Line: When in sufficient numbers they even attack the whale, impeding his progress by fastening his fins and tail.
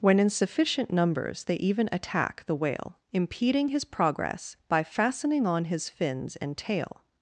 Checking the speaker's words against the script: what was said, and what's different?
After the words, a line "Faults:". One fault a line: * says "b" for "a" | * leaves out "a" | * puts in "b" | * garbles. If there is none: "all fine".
When in sufficient numbers they even attack the whale, impeding his progress by fastening on his fins and tail.
Faults:
* puts in "on"